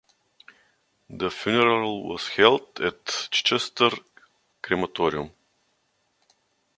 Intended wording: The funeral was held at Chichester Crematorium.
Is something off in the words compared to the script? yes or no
no